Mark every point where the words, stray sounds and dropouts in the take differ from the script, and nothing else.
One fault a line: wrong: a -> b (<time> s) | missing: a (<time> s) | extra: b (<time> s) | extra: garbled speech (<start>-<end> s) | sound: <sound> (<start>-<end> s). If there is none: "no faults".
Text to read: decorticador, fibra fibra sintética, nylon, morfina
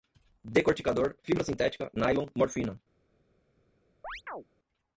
missing: fibra (1.4 s)
sound: chirp (4.0-4.4 s)